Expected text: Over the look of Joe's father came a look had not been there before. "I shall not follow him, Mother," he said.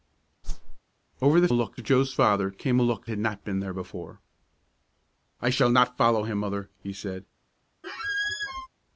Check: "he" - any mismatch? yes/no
no